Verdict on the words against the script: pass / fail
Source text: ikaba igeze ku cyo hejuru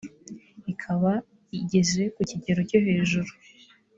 fail